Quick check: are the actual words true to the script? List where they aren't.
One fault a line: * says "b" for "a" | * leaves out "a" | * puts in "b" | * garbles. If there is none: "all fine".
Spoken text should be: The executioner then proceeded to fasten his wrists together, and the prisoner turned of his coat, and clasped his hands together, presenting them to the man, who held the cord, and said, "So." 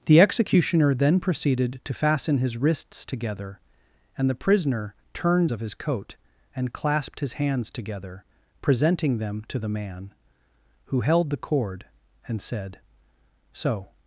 all fine